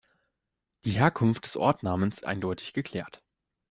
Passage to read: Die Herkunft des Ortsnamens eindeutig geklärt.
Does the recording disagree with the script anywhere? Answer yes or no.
no